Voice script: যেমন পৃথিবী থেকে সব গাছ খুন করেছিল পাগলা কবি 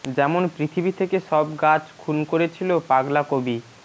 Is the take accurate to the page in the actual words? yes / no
yes